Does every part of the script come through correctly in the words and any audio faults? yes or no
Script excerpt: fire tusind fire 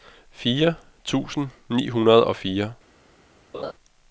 no